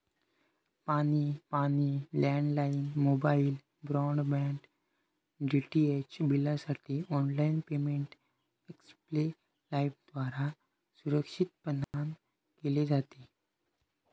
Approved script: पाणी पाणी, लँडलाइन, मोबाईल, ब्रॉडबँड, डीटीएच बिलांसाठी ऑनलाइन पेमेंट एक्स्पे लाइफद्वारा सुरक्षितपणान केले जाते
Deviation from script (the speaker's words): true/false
false